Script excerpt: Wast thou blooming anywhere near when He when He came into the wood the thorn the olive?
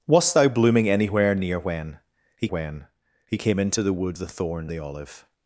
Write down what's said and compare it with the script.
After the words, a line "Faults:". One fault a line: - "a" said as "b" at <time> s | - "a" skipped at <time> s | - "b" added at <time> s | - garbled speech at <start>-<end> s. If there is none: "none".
Wast thou blooming anywhere near when He when He came into the wood the thorn the olive?
Faults:
none